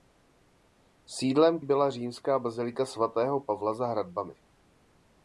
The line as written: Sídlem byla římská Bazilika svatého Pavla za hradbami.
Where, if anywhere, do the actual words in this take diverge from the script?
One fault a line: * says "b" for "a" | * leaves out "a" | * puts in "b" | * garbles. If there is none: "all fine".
all fine